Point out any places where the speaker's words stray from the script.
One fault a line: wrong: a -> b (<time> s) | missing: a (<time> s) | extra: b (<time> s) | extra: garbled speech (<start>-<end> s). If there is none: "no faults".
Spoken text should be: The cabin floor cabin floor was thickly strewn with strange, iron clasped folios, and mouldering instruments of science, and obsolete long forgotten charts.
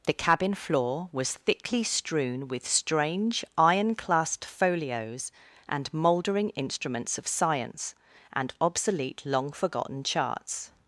missing: cabin floor (1.1 s)